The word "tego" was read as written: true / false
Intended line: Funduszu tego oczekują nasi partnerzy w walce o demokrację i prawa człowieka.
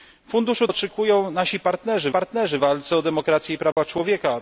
false